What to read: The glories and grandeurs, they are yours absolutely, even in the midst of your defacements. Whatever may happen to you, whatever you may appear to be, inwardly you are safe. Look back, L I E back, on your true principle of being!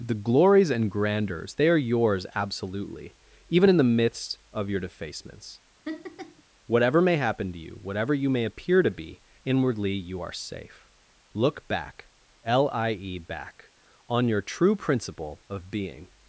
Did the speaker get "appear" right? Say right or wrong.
right